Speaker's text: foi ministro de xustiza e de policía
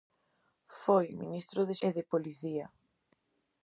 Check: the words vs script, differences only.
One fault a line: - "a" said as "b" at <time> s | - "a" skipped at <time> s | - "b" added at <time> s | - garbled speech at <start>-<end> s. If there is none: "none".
- "xustiza" skipped at 1.8 s